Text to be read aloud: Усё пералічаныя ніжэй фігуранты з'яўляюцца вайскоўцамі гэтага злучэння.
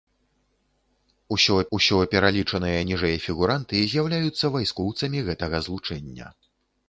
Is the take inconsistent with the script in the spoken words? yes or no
yes